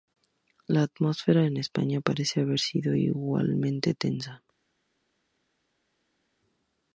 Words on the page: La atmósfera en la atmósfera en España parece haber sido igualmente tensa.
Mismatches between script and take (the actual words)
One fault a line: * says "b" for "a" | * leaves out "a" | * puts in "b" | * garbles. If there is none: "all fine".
* leaves out "la atmósfera en"